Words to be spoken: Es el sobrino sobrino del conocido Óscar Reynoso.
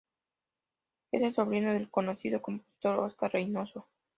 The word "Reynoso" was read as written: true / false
true